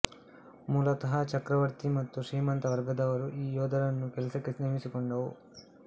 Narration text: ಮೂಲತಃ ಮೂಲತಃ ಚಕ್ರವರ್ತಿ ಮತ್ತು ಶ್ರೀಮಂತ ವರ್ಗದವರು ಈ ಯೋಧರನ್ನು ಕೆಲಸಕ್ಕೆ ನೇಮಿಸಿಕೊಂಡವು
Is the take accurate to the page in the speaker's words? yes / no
no